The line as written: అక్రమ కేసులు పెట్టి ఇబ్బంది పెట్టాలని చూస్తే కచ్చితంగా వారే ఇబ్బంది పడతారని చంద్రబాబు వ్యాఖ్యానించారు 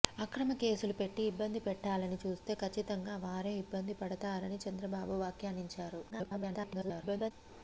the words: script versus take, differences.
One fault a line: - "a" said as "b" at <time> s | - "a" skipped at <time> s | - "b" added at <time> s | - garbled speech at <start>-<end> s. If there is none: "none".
- garbled speech at 6.1-7.3 s